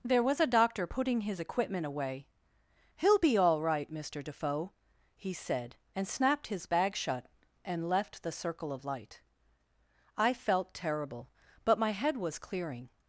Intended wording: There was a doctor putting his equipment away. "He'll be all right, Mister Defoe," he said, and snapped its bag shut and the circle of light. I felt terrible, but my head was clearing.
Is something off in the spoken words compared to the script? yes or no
yes